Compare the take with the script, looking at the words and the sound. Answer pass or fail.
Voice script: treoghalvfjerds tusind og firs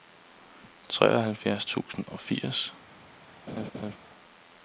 fail